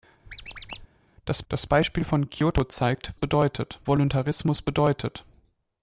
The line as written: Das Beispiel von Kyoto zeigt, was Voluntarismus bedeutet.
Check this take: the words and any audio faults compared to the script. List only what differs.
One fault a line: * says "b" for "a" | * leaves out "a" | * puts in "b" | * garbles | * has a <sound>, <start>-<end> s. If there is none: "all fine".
* has a squeak, 0.3-0.9 s
* puts in "das"
* says "bedeutet" for "was"